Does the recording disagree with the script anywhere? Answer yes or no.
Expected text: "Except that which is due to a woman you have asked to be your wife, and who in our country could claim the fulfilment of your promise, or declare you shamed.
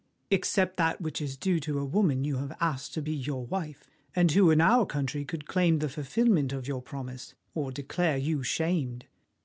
no